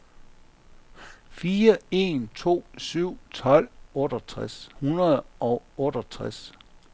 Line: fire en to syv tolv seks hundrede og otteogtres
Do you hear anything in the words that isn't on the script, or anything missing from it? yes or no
yes